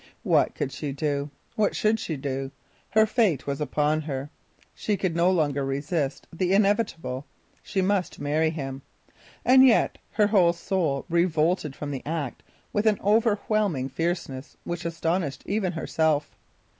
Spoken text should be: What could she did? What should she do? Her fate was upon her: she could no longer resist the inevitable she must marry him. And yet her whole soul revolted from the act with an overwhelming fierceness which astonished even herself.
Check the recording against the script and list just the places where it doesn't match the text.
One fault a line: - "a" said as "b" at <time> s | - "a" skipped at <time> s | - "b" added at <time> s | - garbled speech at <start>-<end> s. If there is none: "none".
- "did" said as "do" at 0.9 s